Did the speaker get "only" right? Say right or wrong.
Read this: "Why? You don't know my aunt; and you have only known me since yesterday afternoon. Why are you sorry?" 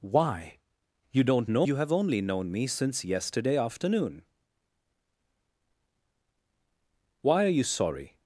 right